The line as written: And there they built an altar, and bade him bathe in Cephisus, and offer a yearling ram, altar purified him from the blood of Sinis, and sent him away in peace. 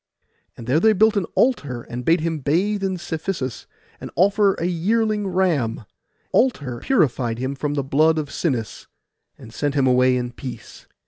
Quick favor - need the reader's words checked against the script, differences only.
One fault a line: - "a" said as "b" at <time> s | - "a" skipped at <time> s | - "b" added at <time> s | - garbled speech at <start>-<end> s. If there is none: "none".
none